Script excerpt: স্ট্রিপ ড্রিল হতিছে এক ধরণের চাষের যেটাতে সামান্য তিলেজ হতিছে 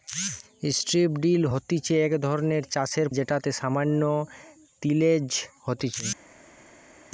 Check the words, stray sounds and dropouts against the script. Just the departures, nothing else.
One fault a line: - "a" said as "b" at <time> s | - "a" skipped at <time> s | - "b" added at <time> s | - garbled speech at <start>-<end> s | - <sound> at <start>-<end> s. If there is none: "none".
none